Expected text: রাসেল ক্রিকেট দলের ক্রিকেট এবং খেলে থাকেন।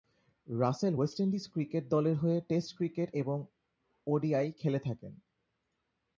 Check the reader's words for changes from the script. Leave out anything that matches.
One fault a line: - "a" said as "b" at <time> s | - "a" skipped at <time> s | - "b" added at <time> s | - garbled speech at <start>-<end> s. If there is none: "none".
- "ওয়েস্ট ইন্ডিজ" added at 0.9 s
- "হয়ে টেস্ট" added at 2.1 s
- "ওডিআই" added at 4.1 s